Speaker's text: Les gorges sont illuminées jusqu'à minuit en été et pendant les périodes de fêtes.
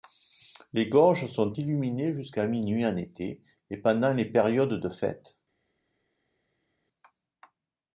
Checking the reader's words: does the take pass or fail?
pass